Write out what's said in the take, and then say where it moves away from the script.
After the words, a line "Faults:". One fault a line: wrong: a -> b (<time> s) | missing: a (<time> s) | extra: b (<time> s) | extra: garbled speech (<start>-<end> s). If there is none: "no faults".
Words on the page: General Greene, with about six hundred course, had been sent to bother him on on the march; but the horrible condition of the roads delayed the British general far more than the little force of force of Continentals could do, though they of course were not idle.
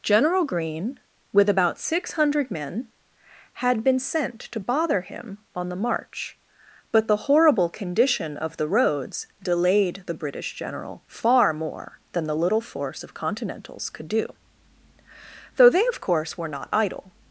General Greene, with about six hundred men, had been sent to bother him on the march; but the horrible condition of the roads delayed the British general far more than the little force of Continentals could do, though they of course were not idle.
Faults:
wrong: course -> men (2.5 s)
missing: on (5.7 s)
missing: force of (13.1 s)